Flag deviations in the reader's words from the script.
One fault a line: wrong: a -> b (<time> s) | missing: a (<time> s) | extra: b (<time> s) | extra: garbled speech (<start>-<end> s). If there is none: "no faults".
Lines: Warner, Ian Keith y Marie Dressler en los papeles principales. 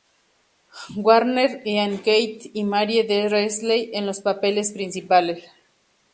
no faults